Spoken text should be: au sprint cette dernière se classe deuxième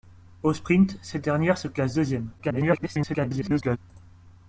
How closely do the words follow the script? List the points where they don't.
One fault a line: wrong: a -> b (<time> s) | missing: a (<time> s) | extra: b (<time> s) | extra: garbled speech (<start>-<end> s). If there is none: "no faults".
extra: garbled speech (2.4-3.8 s)